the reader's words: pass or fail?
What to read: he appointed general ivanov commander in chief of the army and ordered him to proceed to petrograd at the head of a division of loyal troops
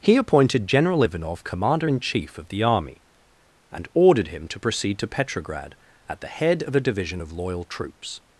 pass